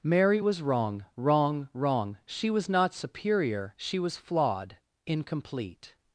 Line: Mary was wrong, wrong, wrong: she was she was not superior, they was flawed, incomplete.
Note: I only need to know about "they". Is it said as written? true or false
false